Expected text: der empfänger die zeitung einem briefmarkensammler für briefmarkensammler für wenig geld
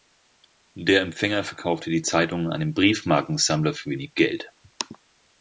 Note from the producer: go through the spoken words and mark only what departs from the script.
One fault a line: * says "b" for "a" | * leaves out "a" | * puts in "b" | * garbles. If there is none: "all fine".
* puts in "verkaufte"
* leaves out "briefmarkensammler für"